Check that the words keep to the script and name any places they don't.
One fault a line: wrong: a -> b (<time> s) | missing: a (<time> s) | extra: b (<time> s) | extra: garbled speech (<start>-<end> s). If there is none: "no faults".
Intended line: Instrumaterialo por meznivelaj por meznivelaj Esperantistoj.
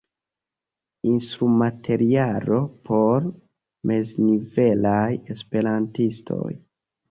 missing: por meznivelaj (5.1 s)